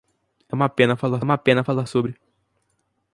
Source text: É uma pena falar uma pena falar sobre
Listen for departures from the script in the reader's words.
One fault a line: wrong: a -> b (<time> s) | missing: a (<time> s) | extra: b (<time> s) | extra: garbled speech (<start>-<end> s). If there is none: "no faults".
no faults